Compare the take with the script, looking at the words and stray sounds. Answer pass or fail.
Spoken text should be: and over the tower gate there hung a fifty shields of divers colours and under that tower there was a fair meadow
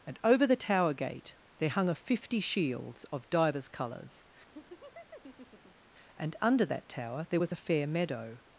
fail